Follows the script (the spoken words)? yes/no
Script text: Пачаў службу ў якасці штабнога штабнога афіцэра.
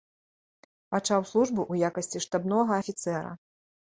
no